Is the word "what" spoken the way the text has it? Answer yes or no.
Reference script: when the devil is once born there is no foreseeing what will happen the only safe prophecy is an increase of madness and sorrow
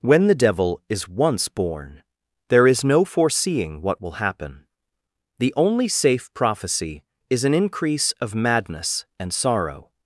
yes